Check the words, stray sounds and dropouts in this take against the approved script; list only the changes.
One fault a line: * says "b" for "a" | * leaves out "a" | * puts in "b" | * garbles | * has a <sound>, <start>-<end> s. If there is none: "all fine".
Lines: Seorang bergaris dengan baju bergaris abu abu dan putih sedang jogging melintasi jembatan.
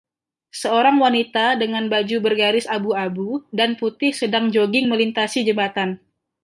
* says "wanita" for "bergaris"